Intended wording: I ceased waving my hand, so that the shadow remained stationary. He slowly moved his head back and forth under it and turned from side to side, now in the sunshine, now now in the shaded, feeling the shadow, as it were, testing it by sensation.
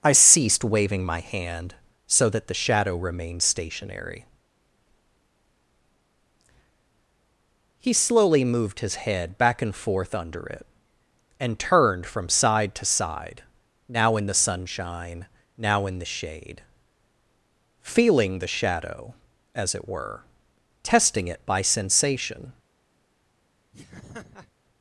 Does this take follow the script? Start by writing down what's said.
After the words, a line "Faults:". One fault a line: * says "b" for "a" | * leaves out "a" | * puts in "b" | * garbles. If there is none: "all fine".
I ceased waving my hand, so that the shadow remained stationary. He slowly moved his head back and forth under it and turned from side to side, now in the sunshine, now in the shade, feeling the shadow, as it were, testing it by sensation.
Faults:
* leaves out "now"
* says "shade" for "shaded"